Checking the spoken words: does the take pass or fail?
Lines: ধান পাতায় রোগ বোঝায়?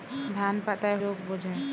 pass